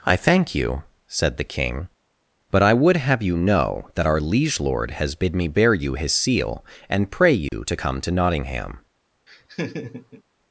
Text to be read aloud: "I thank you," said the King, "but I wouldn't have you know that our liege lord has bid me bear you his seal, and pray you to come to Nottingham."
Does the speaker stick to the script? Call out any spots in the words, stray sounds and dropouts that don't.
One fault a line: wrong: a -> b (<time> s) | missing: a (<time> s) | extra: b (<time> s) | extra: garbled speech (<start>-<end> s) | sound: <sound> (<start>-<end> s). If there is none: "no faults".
wrong: wouldn't -> would (2.7 s)
sound: dropout (7.5-7.5 s)
sound: laugh (9.3-10.2 s)